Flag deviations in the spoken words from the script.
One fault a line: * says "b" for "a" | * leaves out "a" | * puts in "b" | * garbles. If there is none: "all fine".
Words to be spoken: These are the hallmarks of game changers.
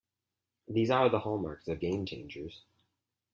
all fine